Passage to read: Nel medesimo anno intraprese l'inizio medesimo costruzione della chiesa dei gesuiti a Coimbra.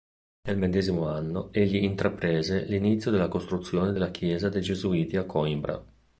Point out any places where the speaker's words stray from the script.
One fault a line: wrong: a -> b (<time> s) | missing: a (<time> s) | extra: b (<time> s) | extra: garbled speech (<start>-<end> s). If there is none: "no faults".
extra: egli (1.5 s)
wrong: medesimo -> della (3.1 s)